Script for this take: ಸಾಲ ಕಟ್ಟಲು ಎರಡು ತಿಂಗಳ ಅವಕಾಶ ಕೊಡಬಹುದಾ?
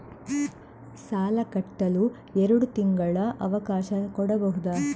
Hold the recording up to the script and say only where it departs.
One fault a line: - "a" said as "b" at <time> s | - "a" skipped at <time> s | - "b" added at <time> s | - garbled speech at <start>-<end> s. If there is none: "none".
none